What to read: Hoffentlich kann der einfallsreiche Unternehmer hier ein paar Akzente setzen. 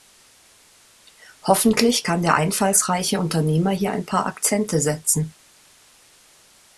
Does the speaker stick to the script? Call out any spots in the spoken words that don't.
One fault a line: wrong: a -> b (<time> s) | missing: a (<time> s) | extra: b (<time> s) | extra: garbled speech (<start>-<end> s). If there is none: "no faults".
no faults